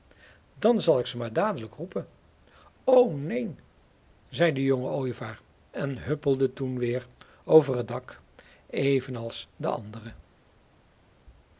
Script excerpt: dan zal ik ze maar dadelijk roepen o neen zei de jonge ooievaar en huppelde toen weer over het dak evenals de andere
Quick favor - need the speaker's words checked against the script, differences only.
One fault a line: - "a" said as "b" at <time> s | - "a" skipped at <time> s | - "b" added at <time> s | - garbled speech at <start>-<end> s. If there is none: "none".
none